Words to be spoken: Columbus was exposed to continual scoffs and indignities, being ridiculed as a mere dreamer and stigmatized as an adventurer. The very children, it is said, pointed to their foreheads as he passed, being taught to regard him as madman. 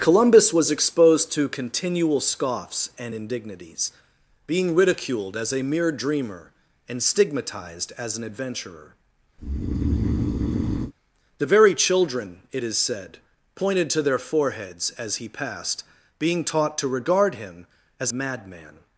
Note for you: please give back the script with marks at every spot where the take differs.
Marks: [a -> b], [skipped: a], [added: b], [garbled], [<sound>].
Columbus was exposed to continual scoffs and indignities, being ridiculed as a mere dreamer and stigmatized as an adventurer. [breath] The very children, it is said, pointed to their foreheads as he passed, being taught to regard him as madman.